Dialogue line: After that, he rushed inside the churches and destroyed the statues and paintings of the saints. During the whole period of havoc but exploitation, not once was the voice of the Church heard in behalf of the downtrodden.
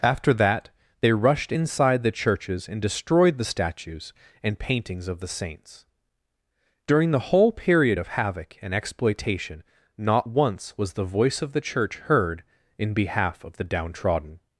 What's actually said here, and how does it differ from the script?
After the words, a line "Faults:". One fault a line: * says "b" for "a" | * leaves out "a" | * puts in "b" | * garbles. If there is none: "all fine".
After that, they rushed inside the churches and destroyed the statues and paintings of the saints. During the whole period of havoc and exploitation, not once was the voice of the Church heard in behalf of the downtrodden.
Faults:
* says "they" for "he"
* says "and" for "but"